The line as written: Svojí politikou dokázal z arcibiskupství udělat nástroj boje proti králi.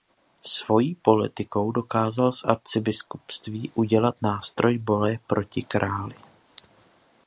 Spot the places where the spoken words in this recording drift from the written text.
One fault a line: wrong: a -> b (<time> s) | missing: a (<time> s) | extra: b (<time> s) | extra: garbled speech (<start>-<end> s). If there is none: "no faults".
no faults